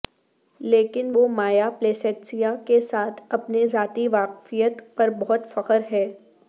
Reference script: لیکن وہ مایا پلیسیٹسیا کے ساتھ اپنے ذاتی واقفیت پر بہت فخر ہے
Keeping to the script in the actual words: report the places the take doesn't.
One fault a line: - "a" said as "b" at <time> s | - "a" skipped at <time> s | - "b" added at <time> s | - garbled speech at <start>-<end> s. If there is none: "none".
none